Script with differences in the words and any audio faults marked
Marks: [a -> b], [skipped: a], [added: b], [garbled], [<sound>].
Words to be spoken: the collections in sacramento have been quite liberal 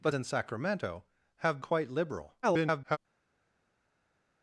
the [skipped: collections] in sacramento have [skipped: been] quite liberal [garbled]